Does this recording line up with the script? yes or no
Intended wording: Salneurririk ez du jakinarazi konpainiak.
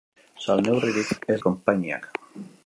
no